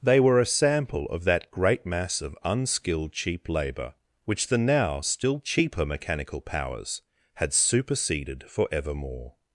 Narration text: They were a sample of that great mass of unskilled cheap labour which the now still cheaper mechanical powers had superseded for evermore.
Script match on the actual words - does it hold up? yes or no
yes